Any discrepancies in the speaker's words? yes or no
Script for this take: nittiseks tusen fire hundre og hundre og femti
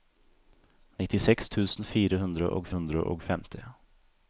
no